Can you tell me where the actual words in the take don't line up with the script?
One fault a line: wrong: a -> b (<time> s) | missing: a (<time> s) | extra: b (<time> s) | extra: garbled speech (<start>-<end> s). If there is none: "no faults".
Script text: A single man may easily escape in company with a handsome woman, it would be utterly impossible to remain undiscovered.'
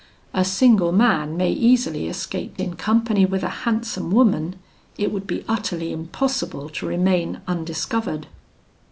no faults